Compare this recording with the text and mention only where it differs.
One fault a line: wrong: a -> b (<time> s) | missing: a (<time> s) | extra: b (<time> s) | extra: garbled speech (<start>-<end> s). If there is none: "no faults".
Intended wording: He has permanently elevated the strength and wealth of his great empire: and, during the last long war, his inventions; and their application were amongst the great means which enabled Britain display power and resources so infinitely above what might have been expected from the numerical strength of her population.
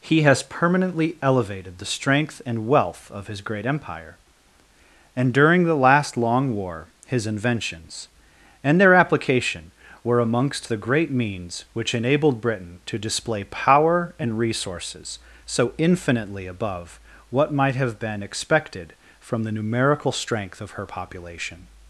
extra: to (12.9 s)